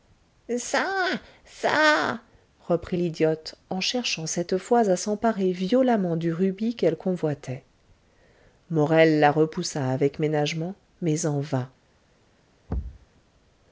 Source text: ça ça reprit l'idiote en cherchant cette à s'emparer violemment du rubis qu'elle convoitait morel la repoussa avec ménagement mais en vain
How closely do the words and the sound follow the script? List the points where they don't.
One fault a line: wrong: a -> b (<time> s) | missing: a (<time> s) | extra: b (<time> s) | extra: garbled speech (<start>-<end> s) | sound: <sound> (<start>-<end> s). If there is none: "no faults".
extra: fois (4.6 s)
sound: thud (12.7-13.1 s)